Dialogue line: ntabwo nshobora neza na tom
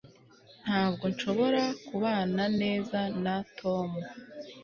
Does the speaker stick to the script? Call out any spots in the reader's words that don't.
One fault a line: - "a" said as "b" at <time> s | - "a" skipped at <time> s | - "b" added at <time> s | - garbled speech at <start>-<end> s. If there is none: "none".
- "kubana" added at 1.9 s